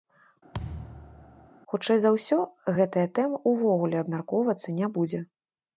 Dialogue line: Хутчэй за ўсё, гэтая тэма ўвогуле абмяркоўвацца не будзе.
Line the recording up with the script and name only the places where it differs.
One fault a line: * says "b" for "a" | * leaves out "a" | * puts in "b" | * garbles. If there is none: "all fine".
all fine